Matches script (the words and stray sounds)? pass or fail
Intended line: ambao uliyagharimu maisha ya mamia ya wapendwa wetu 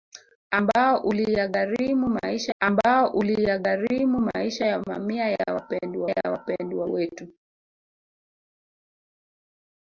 fail